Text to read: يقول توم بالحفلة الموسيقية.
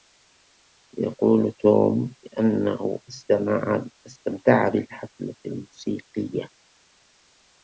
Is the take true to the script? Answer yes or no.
no